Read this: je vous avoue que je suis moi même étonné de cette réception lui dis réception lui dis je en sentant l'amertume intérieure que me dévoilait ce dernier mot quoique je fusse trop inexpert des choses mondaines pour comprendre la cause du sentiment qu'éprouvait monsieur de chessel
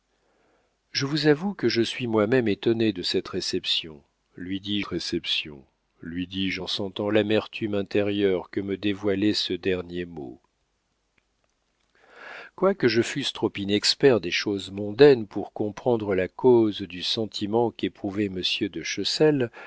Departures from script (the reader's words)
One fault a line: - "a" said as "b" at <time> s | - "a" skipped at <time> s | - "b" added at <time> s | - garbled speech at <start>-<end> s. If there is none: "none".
none